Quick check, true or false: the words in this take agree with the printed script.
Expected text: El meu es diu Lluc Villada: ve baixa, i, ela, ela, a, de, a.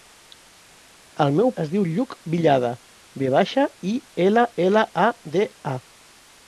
true